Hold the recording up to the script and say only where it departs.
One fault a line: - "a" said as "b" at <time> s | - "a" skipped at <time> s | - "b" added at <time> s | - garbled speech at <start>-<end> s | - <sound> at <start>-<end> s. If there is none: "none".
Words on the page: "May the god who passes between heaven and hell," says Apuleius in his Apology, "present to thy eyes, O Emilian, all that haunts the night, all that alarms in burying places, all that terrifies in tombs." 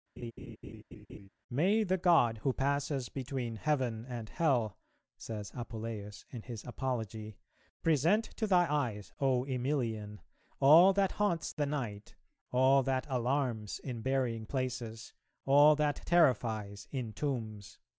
- laugh at 0.2-1.3 s